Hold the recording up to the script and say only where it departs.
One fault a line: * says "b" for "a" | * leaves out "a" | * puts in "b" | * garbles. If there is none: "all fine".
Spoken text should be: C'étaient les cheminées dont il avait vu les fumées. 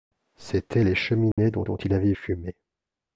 * puts in "dont"
* leaves out "vu les"